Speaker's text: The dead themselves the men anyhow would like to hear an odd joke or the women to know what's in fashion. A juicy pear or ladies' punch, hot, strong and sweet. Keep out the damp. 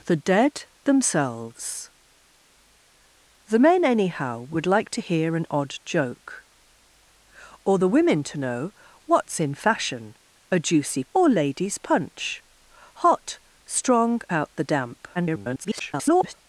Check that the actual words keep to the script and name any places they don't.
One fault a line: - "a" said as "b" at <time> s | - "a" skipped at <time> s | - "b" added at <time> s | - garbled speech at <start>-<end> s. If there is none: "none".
- "pear" skipped at 11.0 s
- "and sweet Keep" skipped at 14.2 s
- garbled speech at 15.1-16.3 s